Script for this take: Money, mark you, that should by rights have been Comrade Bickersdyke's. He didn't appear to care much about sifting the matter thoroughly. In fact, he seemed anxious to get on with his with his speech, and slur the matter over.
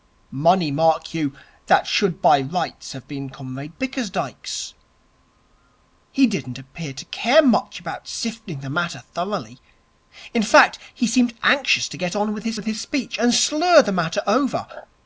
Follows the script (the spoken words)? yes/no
yes